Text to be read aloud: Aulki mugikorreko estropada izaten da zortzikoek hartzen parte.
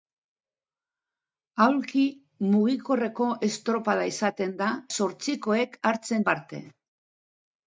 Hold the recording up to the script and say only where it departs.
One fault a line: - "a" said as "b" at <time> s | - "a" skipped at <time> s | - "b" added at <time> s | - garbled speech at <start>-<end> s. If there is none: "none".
none